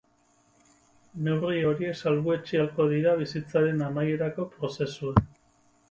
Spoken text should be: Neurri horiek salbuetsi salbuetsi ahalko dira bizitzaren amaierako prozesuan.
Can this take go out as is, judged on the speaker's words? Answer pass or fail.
fail